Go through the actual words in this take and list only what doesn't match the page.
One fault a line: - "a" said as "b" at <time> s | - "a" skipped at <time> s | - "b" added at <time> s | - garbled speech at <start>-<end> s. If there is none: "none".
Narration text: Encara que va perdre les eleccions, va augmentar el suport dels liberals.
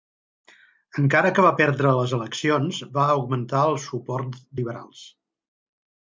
- "dels" skipped at 4.4 s